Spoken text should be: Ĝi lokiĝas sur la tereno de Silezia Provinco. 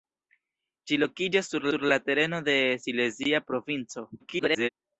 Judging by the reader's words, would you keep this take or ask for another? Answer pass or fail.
fail